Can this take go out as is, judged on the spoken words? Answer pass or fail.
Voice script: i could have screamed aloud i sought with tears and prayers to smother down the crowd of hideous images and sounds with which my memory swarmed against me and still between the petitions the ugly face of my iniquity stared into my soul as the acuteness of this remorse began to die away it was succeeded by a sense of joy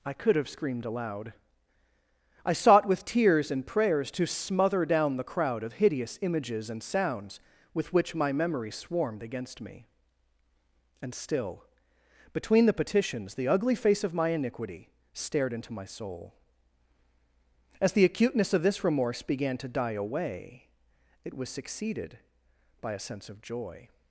pass